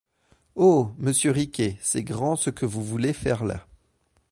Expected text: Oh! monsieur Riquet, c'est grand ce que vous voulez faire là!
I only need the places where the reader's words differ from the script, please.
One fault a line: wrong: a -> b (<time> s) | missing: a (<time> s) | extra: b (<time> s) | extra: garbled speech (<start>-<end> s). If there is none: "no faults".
no faults